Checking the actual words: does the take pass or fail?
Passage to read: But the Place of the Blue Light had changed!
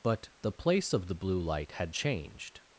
pass